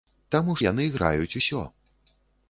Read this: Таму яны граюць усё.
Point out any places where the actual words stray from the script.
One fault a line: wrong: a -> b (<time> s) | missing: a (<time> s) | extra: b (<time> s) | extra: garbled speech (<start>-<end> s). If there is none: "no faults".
no faults